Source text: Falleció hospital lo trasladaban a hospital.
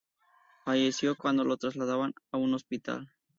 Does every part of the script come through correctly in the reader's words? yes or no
no